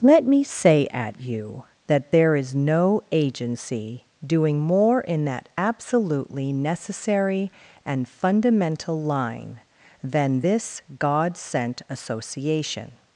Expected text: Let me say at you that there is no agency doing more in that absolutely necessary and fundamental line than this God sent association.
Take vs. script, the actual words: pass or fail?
pass